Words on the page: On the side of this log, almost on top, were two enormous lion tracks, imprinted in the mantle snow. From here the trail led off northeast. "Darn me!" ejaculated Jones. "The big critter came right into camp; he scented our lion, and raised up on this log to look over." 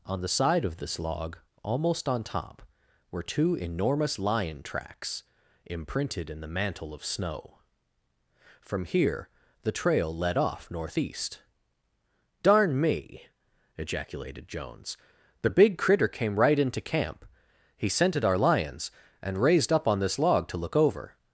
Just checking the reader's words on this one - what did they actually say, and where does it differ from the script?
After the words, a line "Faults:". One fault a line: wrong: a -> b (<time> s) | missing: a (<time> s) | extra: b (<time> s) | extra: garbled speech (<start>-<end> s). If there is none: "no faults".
On the side of this log, almost on top, were two enormous lion tracks, imprinted in the mantle of snow. From here the trail led off northeast. "Darn me!" ejaculated Jones. "The big critter came right into camp; he scented our lions, and raised up on this log to look over."
Faults:
extra: of (6.9 s)
wrong: lion -> lions (18.4 s)